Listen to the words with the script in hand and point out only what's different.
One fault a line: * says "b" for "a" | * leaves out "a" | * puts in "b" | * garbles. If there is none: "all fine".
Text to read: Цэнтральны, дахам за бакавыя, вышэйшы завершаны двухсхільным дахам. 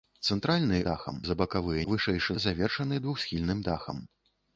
all fine